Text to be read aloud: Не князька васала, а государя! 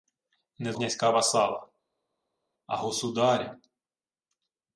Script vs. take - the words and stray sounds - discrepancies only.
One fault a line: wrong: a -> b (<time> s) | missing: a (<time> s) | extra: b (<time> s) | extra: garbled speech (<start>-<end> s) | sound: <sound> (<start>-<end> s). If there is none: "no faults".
no faults